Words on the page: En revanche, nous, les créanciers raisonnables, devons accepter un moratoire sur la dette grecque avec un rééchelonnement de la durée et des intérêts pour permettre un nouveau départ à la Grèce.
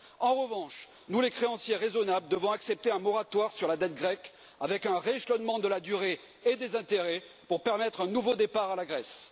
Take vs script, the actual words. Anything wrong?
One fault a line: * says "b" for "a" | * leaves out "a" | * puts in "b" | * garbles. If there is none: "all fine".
all fine